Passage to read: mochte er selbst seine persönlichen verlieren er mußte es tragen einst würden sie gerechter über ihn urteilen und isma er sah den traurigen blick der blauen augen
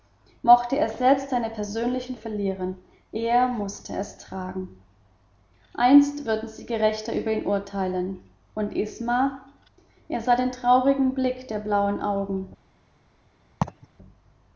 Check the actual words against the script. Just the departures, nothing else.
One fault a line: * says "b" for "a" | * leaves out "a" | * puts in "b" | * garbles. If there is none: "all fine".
all fine